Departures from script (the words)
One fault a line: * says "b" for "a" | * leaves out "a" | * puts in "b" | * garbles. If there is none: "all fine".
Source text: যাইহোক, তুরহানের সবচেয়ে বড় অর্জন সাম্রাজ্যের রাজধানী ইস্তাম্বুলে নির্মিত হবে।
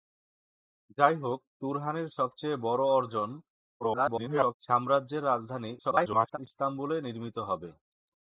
* garbles
* garbles